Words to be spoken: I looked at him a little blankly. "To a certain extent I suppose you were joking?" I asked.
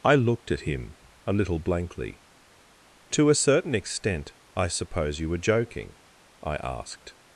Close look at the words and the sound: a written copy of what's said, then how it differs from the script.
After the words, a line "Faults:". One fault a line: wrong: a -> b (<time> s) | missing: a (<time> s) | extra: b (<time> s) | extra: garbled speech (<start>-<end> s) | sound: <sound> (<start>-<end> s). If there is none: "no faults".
I looked at him a little blankly. "To a certain extent I suppose you were joking?" I asked.
Faults:
no faults